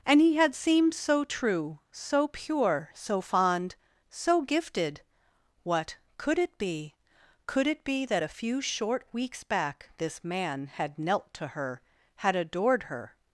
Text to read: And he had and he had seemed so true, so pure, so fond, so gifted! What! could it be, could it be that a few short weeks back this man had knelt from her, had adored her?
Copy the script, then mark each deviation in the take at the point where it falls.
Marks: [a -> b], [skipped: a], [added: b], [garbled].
And he had [skipped: and he had] seemed so true, so pure, so fond, so gifted! What! could it be, could it be that a few short weeks back this man had knelt [from -> to] her, had adored her?